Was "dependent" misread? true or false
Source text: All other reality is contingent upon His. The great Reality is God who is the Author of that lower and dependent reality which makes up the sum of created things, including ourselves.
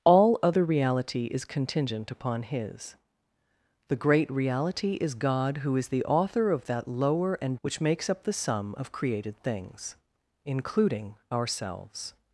true